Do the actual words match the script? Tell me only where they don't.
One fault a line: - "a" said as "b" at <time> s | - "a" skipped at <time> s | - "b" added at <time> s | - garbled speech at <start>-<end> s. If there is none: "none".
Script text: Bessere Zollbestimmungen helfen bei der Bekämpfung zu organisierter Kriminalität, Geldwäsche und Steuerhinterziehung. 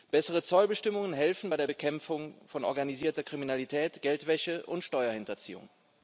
- "zu" said as "von" at 2.5 s